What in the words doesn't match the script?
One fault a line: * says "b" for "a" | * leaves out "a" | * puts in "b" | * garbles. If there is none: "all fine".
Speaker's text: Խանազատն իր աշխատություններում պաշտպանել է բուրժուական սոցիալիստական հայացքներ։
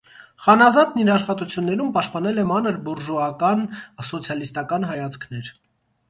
* puts in "մանր"